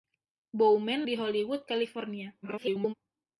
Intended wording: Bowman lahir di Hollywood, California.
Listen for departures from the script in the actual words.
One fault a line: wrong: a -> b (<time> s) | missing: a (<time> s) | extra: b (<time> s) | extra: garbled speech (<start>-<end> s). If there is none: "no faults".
missing: lahir (1.1 s)
extra: garbled speech (2.4-2.9 s)